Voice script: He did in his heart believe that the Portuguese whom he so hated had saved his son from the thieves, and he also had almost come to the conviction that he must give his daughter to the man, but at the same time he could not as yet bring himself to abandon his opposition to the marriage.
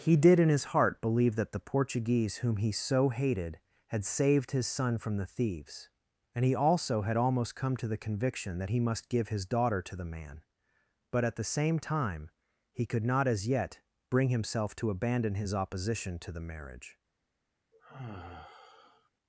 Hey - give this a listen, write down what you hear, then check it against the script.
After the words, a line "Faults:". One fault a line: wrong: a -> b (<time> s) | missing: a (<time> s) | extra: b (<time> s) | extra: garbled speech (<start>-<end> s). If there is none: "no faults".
He did in his heart believe that the Portuguese whom he so hated had saved his son from the thieves, and he also had almost come to the conviction that he must give his daughter to the man, but at the same time he could not as yet bring himself to abandon his opposition to the marriage.
Faults:
no faults